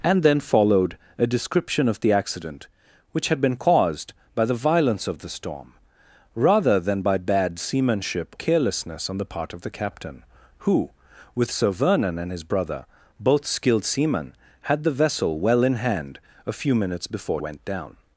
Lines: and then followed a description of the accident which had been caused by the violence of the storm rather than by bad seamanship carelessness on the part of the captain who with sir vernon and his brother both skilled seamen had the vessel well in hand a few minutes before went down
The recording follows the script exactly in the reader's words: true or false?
true